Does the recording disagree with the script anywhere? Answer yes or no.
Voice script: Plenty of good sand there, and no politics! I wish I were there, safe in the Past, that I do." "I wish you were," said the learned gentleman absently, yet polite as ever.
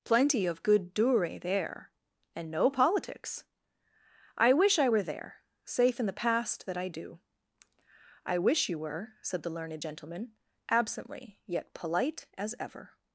yes